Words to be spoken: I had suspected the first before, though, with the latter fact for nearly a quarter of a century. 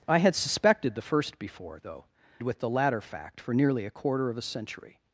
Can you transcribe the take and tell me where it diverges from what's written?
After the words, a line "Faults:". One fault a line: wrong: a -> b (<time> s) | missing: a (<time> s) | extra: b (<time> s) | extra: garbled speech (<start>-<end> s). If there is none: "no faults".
I had suspected the first before, though, with the latter fact for nearly a quarter of a century.
Faults:
no faults